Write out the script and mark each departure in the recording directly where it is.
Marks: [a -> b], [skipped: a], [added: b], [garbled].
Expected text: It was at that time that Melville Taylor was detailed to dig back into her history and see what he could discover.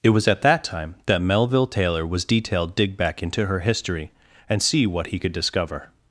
It was at that time that Melville Taylor was detailed [skipped: to] dig back into her history and see what he could discover.